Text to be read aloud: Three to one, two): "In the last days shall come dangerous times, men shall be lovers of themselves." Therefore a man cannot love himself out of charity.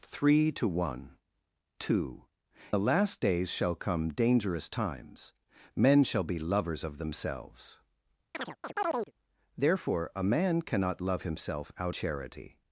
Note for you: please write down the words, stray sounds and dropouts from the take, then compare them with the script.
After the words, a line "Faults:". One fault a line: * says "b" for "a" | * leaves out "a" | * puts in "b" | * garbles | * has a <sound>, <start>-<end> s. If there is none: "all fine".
Three to one, two): "The last days shall come dangerous times, men shall be lovers of themselves." Therefore a man cannot love himself out charity.
Faults:
* leaves out "In"
* has a chirp, 8.3-9.1 s
* leaves out "of"